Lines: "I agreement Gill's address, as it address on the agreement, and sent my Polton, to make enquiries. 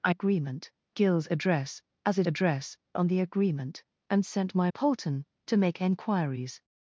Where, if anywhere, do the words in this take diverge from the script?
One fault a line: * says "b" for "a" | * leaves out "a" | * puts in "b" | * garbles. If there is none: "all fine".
all fine